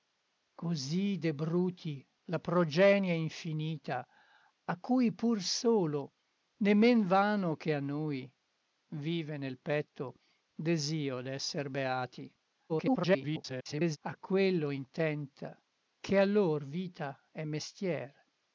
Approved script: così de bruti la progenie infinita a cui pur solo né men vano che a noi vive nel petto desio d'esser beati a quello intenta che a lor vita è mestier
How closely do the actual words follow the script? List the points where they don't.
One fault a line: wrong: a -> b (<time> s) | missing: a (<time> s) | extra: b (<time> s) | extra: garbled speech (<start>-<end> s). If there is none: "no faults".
extra: garbled speech (12.7-14.0 s)